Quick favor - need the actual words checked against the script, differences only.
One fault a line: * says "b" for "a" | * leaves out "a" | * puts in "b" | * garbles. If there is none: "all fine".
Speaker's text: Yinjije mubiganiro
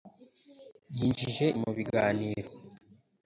all fine